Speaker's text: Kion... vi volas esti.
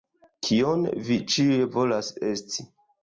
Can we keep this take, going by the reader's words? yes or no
no